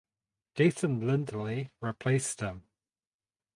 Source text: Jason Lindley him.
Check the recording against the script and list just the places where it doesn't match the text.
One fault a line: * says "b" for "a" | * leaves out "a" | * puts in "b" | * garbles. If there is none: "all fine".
* puts in "replaced"